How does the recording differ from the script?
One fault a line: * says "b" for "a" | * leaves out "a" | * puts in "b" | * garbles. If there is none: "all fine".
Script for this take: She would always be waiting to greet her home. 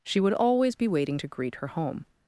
all fine